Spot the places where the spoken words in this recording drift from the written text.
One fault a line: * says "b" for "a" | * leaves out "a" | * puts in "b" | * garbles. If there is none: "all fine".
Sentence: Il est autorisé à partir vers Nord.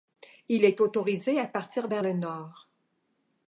* puts in "le"